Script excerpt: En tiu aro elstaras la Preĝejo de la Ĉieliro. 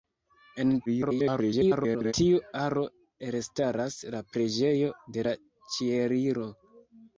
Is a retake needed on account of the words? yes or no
yes